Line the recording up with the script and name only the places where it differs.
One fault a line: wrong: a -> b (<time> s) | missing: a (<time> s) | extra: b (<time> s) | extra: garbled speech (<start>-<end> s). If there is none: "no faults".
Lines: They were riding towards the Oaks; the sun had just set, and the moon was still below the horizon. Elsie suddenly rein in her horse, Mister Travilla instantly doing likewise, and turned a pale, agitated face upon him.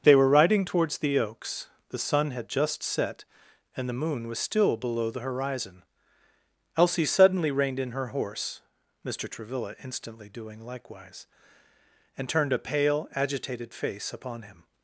wrong: rein -> reined (7.5 s)